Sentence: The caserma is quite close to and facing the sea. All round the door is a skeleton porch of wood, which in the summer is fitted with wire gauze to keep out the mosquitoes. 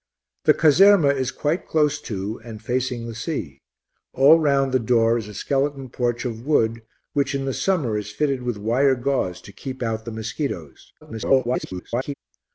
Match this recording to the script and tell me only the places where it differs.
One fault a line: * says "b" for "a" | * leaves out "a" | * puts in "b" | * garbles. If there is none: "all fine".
* garbles